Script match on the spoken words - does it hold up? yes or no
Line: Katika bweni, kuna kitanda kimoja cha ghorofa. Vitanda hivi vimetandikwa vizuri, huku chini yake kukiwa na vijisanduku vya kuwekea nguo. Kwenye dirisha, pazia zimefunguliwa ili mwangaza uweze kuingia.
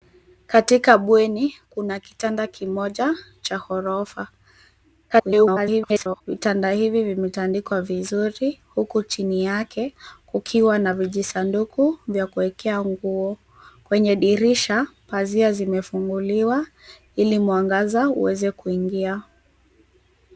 no